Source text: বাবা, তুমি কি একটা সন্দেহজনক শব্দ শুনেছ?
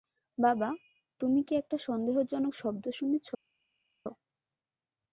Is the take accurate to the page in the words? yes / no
yes